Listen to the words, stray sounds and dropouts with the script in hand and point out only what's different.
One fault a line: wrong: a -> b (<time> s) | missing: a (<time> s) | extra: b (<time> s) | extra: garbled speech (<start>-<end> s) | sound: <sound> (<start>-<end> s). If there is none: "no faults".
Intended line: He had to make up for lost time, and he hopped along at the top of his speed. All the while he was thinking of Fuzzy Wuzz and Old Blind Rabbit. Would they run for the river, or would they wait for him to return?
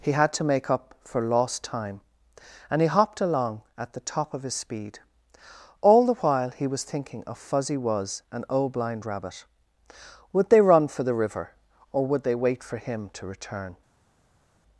no faults